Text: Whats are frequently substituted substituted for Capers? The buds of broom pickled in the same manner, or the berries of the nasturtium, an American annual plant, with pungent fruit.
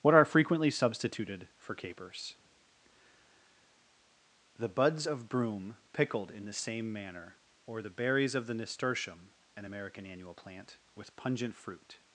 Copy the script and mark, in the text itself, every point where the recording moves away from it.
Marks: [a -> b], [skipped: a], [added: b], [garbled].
[Whats -> What] are frequently substituted [skipped: substituted] for Capers? The buds of broom pickled in the same manner, or the berries of the nasturtium, an American annual plant, with pungent fruit.